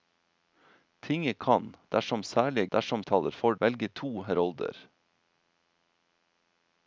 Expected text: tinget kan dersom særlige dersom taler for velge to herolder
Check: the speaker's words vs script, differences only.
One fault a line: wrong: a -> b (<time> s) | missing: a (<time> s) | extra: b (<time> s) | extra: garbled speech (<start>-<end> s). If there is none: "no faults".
no faults